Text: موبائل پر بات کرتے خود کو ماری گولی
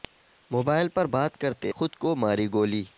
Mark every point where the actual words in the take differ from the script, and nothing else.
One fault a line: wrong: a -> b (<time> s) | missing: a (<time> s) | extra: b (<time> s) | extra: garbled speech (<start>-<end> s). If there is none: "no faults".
no faults